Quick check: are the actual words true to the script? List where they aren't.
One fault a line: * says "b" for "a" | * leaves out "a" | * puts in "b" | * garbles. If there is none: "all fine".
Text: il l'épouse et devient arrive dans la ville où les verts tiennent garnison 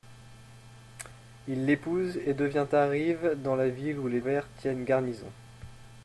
all fine